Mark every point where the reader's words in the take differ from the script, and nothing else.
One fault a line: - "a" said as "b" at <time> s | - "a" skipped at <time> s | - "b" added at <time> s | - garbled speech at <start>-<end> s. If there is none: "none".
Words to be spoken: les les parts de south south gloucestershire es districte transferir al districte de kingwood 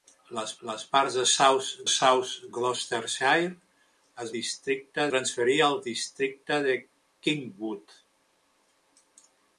none